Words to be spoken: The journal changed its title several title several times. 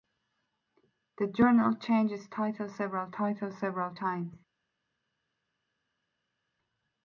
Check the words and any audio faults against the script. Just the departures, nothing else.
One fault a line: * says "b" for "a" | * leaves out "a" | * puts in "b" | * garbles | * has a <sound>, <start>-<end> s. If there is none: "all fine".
all fine